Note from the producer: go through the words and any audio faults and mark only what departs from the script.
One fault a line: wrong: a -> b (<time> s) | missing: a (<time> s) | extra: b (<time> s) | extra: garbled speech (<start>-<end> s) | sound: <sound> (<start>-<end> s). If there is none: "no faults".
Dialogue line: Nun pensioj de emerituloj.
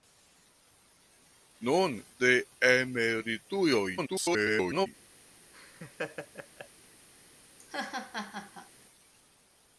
missing: pensioj (1.9 s)
extra: garbled speech (4.0-4.9 s)
sound: laugh (5.5-6.7 s)
sound: laugh (7.6-8.7 s)